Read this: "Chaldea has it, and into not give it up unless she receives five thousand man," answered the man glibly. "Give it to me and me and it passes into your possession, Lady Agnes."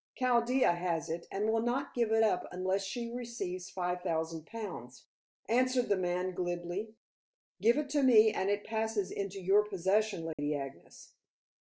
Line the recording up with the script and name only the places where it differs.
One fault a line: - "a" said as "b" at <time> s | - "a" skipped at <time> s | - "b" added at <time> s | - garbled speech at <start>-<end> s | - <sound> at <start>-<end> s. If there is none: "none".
- "into" said as "will" at 1.5 s
- "man" said as "pounds" at 4.5 s
- "me and" skipped at 8.5 s
- dropout at 10.3-10.4 s